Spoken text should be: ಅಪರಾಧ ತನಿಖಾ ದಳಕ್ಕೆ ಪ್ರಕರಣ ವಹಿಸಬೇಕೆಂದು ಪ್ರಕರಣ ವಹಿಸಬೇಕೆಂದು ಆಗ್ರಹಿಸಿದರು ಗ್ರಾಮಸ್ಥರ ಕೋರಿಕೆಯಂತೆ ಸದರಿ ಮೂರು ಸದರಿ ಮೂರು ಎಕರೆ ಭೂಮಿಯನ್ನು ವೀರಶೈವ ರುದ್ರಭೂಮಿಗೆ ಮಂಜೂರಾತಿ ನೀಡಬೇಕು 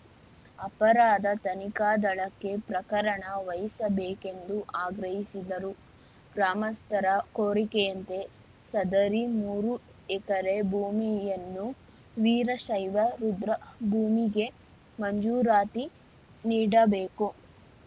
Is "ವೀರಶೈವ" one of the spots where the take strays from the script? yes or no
no